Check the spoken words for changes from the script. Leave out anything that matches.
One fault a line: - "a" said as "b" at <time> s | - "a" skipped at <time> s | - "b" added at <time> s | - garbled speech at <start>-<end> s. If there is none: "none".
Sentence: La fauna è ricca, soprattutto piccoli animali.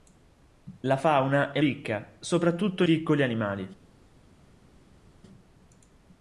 none